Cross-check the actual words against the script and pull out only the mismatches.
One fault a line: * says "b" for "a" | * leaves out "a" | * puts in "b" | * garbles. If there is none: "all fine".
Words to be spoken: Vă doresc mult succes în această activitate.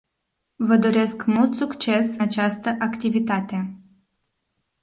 * leaves out "în"